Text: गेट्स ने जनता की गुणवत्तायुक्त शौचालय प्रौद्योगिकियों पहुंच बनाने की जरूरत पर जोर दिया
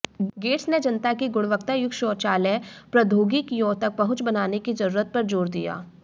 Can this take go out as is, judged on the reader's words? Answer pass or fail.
fail